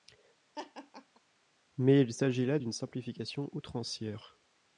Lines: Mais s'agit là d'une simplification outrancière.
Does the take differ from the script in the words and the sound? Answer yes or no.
yes